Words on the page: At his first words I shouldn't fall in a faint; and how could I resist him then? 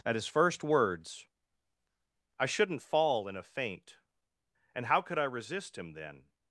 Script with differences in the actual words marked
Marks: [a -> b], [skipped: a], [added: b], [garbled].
At his first words I shouldn't fall in a faint; and how could I resist him then?